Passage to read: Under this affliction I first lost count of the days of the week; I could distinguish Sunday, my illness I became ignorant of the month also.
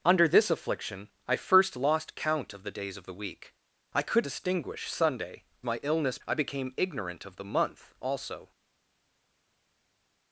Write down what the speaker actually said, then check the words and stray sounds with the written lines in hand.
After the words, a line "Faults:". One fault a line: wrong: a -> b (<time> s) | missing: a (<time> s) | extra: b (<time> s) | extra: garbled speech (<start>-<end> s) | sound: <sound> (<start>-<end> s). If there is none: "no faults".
Under this affliction I first lost count of the days of the week; I could distinguish Sunday, my illness I became ignorant of the month also.
Faults:
no faults